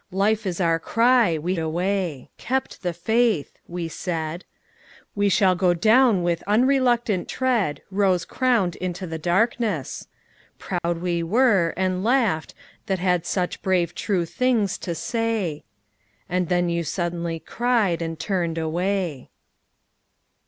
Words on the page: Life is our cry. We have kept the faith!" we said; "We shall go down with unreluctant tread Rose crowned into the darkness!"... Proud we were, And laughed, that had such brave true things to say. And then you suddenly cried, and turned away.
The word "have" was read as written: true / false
false